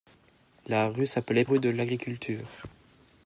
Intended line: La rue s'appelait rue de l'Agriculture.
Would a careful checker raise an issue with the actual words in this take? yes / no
no